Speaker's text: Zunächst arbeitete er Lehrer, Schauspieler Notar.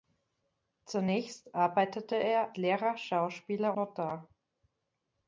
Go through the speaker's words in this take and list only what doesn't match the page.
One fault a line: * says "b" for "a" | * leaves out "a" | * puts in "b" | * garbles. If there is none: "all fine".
all fine